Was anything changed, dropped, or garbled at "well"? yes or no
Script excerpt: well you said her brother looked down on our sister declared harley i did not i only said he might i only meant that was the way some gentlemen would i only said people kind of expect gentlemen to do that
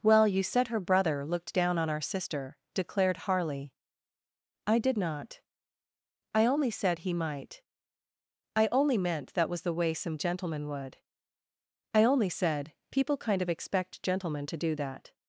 no